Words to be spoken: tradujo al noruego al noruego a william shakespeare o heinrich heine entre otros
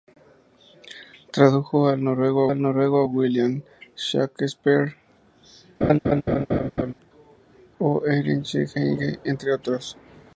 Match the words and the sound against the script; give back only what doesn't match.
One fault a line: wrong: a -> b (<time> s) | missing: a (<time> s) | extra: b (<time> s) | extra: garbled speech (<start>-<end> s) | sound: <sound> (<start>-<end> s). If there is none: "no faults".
sound: laugh (5.8-6.9 s)